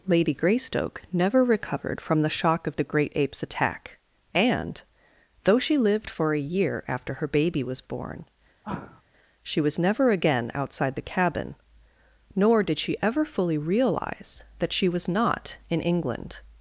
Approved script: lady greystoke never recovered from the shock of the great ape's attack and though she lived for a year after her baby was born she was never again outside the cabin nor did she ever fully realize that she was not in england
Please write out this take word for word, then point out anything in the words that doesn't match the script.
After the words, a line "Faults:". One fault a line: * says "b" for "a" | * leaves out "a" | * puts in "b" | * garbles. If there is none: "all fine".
lady greystoke never recovered from the shock of the great ape's attack and though she lived for a year after her baby was born she was never again outside the cabin nor did she ever fully realize that she was not in england
Faults:
all fine